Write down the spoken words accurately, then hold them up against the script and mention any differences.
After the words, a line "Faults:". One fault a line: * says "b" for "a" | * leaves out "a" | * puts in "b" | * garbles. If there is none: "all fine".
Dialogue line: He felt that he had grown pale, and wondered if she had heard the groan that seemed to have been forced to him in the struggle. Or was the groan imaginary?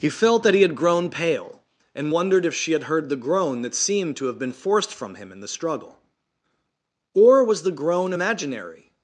He felt that he had grown pale, and wondered if she had heard the groan that seemed to have been forced from him in the struggle. Or was the groan imaginary?
Faults:
* says "from" for "to"